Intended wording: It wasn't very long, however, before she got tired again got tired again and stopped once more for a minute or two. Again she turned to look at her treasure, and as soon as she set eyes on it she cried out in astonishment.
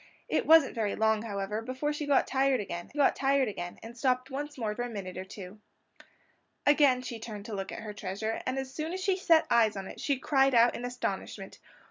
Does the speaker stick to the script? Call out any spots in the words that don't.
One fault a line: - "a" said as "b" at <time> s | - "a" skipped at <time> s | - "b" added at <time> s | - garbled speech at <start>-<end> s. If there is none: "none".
none